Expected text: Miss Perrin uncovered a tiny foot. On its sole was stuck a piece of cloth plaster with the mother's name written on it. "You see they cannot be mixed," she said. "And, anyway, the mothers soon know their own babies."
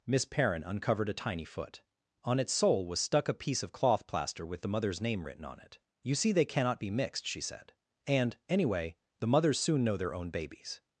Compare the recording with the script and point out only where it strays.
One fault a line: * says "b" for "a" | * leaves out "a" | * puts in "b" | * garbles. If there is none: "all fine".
all fine